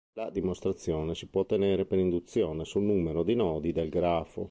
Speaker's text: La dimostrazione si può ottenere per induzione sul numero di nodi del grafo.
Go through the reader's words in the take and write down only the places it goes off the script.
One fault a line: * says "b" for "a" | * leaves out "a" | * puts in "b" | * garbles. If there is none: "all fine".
all fine